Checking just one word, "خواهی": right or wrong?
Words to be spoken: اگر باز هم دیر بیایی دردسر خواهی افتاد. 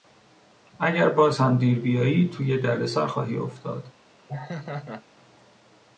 right